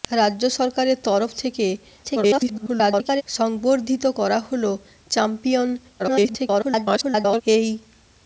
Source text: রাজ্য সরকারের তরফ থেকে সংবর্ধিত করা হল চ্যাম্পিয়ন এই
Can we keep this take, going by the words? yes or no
no